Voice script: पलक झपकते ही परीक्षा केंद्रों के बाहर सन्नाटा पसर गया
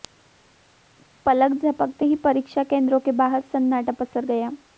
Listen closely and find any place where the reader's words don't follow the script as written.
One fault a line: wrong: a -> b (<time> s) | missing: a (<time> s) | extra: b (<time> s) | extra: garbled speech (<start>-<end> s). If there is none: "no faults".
no faults